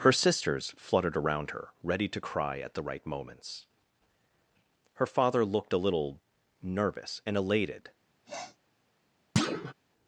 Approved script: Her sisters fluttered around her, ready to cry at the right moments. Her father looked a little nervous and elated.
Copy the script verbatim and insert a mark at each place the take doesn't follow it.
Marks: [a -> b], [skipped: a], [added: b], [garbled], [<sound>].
Her sisters fluttered around her, ready to cry at the right moments. Her father looked a little nervous and elated. [sniff] [thud]